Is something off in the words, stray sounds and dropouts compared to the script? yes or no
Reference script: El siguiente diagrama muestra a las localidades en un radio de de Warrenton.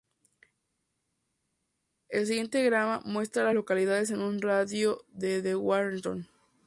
no